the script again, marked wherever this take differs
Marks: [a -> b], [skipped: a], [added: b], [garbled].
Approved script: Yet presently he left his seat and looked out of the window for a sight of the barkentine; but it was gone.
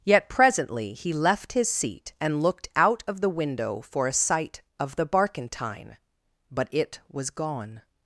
Yet presently he left his seat and looked out of the window for a sight of the barkentine; but it was gone.